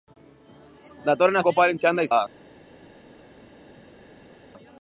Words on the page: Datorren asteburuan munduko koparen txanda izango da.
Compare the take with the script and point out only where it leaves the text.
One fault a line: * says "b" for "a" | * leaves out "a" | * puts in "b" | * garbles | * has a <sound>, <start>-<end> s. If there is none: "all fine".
* leaves out "asteburuan munduko"
* leaves out "izango"